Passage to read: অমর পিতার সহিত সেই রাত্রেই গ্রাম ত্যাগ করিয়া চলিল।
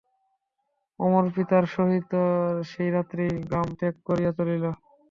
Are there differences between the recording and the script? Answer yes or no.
no